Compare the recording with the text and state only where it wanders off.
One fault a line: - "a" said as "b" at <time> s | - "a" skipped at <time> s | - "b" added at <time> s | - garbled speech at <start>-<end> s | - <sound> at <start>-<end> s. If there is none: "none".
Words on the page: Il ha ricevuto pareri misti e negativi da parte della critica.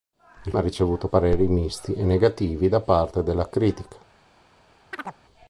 - chirp at 4.9-5.2 s